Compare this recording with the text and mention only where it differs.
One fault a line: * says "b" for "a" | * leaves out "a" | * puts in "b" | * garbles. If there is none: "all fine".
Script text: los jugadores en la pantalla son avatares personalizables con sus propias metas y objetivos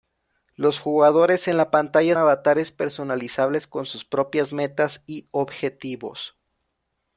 * leaves out "son"